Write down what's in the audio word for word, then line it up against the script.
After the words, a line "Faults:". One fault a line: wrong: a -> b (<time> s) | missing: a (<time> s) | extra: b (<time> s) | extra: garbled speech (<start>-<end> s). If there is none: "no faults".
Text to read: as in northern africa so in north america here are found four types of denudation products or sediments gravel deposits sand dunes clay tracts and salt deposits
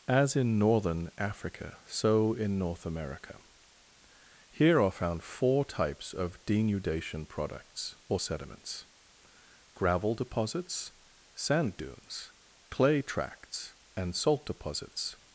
as in northern africa so in north america here are found four types of denudation products or sediments gravel deposits sand dunes clay tracts and salt deposits
Faults:
no faults